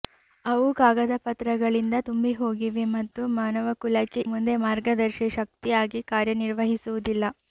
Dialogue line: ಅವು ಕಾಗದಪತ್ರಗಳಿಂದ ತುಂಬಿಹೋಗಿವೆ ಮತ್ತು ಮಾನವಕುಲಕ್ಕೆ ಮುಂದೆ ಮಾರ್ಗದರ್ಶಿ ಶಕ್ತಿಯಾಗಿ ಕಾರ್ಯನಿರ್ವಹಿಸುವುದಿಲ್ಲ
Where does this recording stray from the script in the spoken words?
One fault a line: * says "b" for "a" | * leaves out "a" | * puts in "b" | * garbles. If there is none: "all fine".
all fine